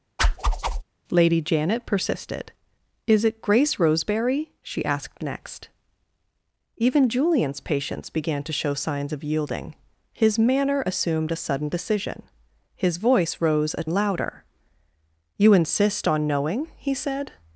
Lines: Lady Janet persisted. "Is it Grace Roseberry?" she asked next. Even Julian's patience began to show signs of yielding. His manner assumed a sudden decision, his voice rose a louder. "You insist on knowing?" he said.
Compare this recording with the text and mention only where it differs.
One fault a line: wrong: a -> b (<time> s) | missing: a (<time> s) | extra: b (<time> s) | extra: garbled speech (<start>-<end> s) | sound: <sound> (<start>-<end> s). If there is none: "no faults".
sound: whoosh (0.2-0.8 s)